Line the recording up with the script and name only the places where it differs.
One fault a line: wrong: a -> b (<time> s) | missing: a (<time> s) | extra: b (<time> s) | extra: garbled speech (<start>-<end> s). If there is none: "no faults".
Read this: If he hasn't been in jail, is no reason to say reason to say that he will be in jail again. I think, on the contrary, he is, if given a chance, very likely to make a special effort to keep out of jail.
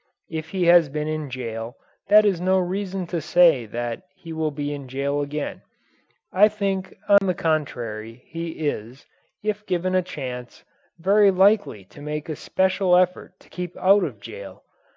wrong: hasn't -> has (0.7 s)
extra: that (2.1 s)
missing: reason to say (3.7 s)